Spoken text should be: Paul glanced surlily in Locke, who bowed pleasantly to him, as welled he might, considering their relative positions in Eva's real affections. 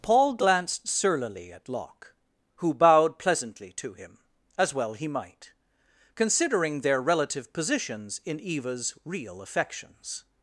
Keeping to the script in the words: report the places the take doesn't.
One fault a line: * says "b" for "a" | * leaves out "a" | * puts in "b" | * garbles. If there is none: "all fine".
* says "at" for "in"
* says "well" for "welled"